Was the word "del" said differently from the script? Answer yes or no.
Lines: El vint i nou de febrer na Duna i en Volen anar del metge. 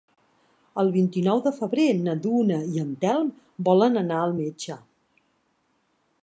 yes